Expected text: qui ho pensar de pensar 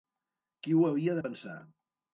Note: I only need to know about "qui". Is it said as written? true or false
true